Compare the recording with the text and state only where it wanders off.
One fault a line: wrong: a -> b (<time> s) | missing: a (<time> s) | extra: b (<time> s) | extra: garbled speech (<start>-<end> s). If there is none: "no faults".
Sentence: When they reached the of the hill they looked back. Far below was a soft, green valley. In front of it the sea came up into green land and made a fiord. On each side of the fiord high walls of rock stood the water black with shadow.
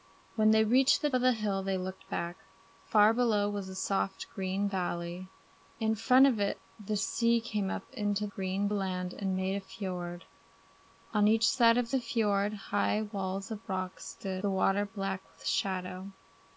no faults